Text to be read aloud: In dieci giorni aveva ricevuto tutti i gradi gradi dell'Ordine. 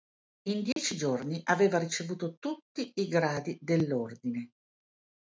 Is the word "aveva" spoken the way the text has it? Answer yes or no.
yes